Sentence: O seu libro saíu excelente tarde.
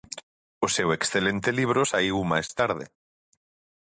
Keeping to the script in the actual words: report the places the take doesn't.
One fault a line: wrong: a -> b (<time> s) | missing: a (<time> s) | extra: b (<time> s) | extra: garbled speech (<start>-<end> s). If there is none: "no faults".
extra: excelente (1.0 s)
wrong: excelente -> máis (2.3 s)